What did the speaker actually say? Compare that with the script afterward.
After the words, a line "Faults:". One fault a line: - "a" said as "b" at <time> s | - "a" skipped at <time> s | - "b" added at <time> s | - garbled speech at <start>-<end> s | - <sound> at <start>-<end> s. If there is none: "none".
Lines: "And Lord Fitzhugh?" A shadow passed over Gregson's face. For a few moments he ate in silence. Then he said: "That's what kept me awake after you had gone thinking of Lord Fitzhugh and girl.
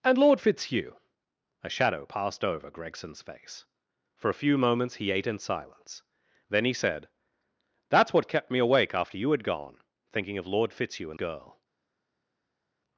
"And Lord Fitzhugh?" A shadow passed over Gregson's face. For a few moments he ate in silence. Then he said: "That's what kept me awake after you had gone thinking of Lord Fitzhugh and girl.
Faults:
none